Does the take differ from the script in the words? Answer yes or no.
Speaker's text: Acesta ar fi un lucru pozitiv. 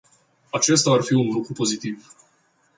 no